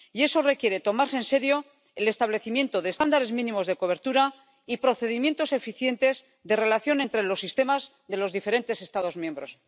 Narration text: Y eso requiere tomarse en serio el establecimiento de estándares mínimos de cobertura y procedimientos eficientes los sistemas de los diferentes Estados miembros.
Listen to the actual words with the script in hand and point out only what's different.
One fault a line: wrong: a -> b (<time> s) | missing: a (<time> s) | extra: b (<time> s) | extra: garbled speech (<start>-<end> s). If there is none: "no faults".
extra: de relación entre (6.4 s)